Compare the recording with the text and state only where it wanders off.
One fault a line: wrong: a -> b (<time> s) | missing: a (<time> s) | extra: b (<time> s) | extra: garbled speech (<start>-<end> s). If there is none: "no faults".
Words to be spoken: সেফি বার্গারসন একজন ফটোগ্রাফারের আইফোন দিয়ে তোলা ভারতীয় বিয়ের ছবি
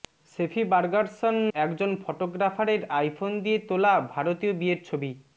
no faults